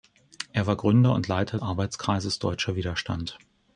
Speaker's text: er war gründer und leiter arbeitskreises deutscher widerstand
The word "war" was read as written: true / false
true